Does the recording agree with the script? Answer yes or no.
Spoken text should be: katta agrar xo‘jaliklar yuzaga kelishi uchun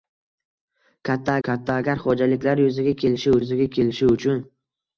no